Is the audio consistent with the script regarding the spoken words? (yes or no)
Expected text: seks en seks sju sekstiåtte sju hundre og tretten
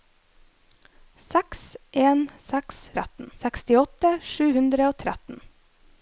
no